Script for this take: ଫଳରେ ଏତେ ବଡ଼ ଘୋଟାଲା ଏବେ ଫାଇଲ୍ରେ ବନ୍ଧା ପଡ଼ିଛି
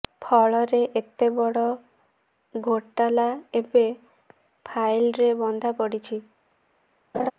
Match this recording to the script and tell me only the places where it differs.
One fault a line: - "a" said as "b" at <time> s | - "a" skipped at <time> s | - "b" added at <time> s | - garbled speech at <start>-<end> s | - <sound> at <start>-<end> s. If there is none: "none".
- laugh at 7.1-7.3 s